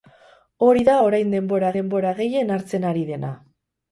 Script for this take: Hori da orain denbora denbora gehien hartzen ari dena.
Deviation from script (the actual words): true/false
false